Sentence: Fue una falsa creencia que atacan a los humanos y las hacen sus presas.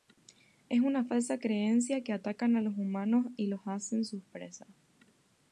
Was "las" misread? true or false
true